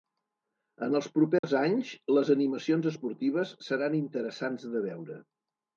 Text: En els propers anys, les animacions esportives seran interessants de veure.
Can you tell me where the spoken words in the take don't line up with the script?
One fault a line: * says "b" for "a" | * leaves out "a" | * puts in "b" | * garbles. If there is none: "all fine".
all fine